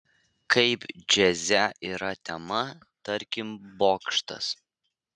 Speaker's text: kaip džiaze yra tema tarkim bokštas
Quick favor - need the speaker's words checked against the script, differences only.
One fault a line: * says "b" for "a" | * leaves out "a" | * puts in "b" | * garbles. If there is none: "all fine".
all fine